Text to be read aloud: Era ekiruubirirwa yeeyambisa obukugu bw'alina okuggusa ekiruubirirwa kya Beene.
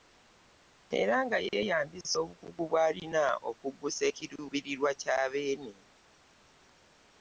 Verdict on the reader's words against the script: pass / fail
fail